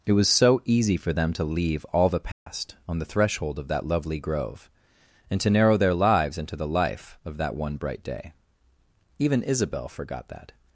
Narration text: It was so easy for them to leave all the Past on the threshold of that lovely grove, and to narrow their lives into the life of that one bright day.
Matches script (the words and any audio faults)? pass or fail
fail